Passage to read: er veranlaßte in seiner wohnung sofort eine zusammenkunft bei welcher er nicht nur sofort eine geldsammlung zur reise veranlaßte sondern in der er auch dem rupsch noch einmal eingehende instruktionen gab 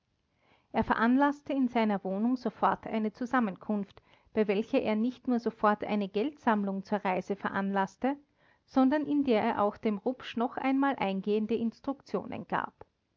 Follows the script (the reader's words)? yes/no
yes